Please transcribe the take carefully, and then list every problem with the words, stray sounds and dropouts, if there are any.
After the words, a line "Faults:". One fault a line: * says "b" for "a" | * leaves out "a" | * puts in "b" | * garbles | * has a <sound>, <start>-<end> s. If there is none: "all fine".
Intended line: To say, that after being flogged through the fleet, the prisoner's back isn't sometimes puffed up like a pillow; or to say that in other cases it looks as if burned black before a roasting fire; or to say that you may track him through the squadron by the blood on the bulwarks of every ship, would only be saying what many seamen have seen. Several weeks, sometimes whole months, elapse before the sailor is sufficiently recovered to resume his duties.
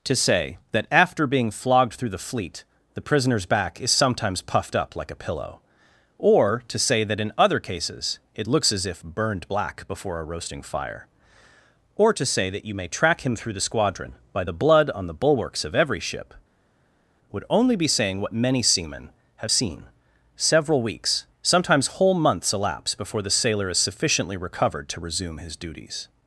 To say, that after being flogged through the fleet, the prisoner's back is sometimes puffed up like a pillow; or to say that in other cases it looks as if burned black before a roasting fire; or to say that you may track him through the squadron by the blood on the bulwarks of every ship, would only be saying what many seamen have seen. Several weeks, sometimes whole months, elapse before the sailor is sufficiently recovered to resume his duties.
Faults:
* says "is" for "isn't"